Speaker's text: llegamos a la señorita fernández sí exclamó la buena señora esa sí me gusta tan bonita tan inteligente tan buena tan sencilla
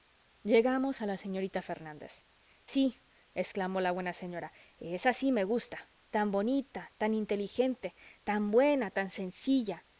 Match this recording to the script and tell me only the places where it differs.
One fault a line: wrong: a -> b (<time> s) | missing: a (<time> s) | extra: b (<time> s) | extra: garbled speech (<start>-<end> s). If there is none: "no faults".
no faults